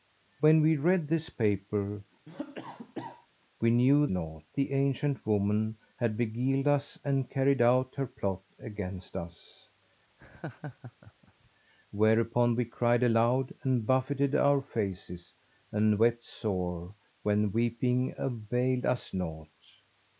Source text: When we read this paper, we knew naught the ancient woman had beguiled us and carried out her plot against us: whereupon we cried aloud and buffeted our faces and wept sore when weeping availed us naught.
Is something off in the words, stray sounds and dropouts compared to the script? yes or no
yes